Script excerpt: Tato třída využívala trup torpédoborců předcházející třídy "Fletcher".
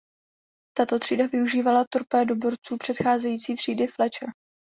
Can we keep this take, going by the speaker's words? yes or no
no